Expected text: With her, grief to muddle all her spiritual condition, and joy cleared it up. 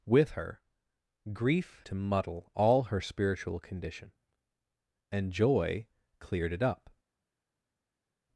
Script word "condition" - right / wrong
right